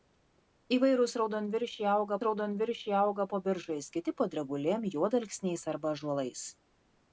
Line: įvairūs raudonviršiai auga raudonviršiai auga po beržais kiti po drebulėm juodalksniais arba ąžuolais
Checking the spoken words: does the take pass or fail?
pass